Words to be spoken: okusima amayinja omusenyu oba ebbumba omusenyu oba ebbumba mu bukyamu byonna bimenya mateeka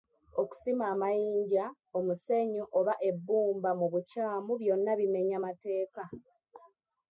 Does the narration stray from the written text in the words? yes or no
yes